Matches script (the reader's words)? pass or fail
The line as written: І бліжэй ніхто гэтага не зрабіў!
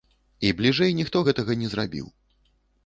pass